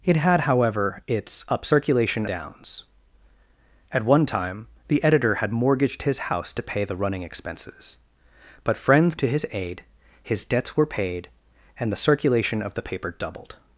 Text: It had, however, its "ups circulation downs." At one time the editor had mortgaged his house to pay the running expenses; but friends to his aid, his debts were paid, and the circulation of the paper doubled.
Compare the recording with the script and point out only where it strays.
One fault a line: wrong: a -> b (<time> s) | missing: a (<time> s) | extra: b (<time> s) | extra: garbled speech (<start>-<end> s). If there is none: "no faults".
no faults